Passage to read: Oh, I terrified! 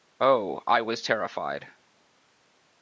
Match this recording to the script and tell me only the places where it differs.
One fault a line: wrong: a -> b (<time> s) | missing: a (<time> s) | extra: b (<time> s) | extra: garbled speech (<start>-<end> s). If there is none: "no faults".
extra: was (0.8 s)